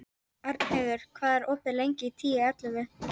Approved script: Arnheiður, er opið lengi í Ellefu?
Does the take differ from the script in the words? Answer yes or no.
yes